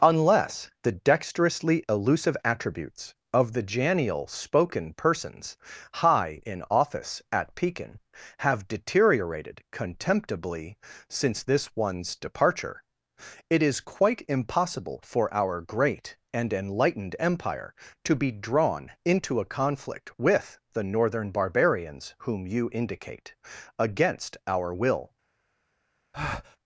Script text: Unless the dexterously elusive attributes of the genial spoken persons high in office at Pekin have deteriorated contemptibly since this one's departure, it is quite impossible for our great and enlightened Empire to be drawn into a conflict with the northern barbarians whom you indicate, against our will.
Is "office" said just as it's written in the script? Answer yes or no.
yes